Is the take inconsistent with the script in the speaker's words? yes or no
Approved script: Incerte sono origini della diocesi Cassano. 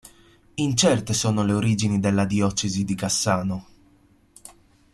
yes